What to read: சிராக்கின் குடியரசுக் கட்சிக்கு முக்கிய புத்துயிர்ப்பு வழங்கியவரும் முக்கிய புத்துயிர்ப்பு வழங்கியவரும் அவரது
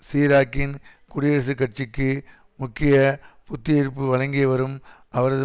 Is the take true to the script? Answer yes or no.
no